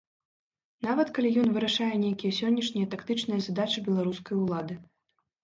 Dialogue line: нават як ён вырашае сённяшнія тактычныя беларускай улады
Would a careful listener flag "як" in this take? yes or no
yes